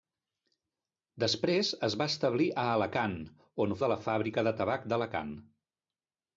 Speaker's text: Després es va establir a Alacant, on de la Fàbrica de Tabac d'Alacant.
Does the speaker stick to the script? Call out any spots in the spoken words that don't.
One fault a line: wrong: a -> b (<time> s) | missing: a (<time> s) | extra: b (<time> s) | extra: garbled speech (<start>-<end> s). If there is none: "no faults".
no faults